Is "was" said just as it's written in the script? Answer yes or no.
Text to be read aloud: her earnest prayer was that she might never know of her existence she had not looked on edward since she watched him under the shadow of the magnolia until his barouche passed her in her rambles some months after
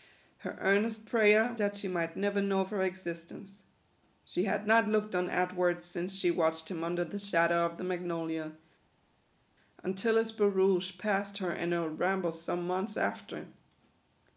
no